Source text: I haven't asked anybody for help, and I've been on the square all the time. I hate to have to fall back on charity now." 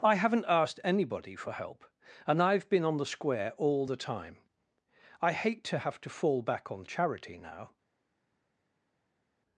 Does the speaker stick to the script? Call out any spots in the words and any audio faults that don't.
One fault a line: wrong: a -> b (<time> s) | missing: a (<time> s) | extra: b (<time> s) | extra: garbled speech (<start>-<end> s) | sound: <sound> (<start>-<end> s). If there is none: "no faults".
no faults